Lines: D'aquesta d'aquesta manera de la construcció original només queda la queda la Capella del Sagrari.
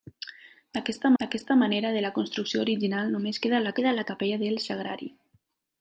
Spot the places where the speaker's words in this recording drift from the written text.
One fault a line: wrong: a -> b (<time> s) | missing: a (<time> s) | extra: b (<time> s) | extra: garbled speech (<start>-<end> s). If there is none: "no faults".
no faults